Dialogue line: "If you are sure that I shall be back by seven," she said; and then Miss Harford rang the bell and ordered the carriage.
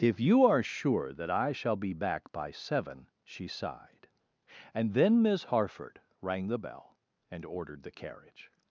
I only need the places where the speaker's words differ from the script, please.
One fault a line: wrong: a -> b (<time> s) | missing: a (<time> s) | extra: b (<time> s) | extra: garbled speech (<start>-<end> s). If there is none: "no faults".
wrong: said -> sighed (3.5 s)